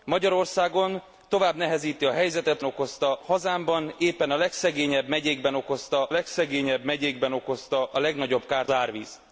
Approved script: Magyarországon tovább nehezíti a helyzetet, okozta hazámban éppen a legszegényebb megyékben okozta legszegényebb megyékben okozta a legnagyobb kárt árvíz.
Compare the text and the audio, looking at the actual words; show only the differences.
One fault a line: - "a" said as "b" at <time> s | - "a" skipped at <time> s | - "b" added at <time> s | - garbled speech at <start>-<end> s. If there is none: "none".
none